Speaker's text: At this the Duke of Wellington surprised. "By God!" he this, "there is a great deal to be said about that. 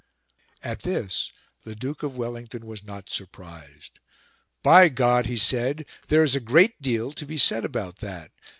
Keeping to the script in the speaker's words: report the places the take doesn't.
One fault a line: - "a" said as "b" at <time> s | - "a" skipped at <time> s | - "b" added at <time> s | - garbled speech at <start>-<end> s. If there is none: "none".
- "was not" added at 2.6 s
- "this" said as "said" at 5.4 s